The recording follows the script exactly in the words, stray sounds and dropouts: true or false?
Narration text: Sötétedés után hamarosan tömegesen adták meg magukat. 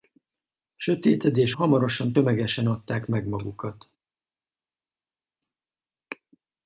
false